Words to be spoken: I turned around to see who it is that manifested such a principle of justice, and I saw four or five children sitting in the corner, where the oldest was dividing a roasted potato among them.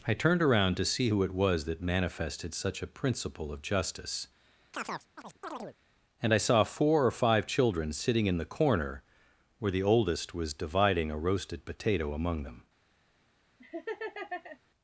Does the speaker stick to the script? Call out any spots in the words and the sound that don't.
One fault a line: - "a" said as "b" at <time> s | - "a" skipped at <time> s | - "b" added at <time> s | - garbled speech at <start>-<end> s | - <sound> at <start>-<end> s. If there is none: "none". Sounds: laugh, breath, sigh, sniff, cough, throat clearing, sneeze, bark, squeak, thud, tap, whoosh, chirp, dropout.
- "is" said as "was" at 1.3 s
- chirp at 4.7-5.8 s
- laugh at 13.6-14.6 s